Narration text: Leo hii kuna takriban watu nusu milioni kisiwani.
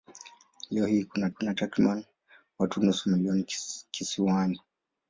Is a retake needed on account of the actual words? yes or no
yes